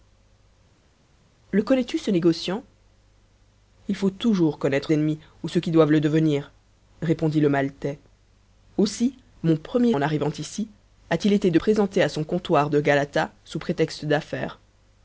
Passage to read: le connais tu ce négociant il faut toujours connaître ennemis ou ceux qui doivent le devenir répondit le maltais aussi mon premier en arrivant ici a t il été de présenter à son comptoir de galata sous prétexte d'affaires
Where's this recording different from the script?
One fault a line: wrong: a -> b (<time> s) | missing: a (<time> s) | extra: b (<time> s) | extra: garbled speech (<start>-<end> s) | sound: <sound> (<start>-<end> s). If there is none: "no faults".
no faults